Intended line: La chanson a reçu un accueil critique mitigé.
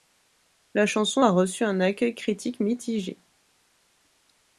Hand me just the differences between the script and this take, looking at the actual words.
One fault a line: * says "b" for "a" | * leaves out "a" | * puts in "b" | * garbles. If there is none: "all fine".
all fine